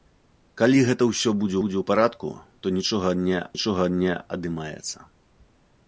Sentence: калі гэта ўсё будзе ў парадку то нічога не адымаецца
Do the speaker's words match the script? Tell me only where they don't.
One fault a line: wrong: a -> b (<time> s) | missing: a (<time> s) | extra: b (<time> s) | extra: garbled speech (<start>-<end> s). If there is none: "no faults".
extra: будзе (1.6 s)
extra: нічога не (3.6 s)